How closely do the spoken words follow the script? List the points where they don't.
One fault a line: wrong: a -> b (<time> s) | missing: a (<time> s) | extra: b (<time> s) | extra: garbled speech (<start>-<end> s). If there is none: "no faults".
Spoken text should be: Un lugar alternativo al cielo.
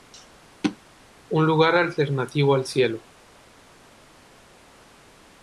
no faults